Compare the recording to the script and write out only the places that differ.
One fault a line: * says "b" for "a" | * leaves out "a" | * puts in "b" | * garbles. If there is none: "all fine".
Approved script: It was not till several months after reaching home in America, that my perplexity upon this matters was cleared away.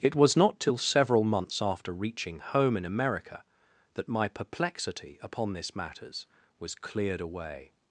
all fine